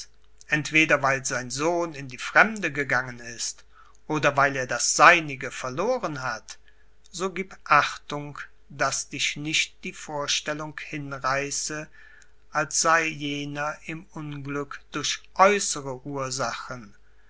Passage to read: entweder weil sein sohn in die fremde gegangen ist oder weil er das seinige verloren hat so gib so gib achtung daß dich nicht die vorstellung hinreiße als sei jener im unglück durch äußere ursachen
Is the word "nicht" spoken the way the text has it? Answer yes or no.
yes